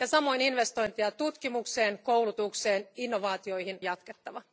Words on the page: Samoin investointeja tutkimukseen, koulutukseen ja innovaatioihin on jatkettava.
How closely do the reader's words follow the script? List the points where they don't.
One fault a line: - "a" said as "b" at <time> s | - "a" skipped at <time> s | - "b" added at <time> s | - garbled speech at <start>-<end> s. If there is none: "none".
- "on" skipped at 3.8 s